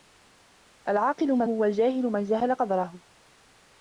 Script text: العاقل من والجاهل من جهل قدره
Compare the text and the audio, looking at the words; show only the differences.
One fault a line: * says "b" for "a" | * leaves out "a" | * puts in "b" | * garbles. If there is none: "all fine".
all fine